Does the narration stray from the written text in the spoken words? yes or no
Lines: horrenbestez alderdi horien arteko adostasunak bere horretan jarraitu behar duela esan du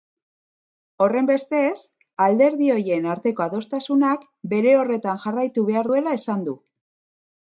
no